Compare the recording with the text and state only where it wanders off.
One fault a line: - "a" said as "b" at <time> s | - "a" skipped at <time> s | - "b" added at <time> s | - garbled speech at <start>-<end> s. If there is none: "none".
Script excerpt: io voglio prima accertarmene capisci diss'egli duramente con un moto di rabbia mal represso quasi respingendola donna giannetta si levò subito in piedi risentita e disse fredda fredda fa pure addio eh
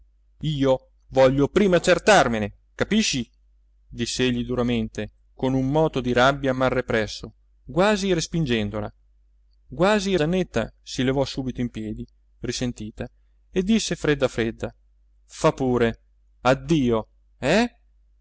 - "donna" said as "quasi" at 9.7 s